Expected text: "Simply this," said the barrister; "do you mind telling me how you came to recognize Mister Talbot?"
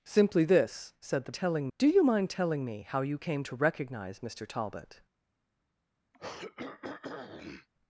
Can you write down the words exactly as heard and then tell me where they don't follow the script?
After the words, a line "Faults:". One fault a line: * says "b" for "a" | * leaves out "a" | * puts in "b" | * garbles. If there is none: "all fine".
"Simply this," said the telling; "do you mind telling me how you came to recognize Mister Talbot?"
Faults:
* says "telling" for "barrister"